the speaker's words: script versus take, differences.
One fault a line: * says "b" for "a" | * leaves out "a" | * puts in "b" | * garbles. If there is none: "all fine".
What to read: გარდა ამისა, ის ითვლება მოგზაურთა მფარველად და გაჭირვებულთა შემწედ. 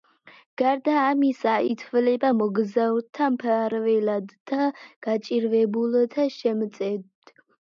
* leaves out "ის"